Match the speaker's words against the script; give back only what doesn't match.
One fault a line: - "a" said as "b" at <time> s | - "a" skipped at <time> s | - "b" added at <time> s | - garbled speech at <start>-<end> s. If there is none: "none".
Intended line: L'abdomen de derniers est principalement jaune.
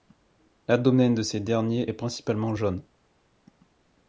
- "ces" added at 1.2 s